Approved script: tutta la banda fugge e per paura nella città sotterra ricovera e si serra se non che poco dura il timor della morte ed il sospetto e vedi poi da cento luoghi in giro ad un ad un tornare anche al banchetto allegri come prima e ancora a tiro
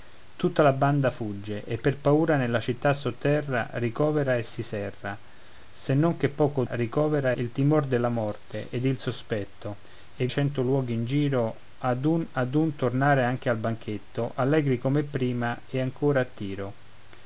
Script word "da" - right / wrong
wrong